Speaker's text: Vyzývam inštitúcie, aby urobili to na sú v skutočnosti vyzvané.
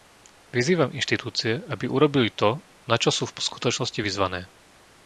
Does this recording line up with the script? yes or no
no